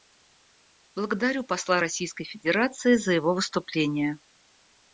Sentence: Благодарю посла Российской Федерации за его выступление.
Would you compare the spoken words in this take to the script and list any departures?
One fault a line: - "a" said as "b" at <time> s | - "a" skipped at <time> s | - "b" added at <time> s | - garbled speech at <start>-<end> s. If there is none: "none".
none